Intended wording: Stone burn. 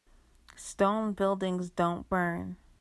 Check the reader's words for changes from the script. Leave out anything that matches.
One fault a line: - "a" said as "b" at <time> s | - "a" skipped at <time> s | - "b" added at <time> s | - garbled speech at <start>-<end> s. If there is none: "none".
- "buildings don't" added at 1.1 s